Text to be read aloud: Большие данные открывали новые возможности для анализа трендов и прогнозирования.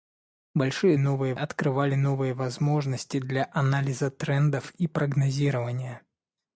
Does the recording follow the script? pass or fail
fail